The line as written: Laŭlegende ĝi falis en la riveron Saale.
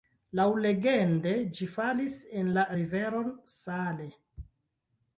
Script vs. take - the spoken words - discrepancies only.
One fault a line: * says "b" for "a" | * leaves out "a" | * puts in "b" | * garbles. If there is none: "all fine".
all fine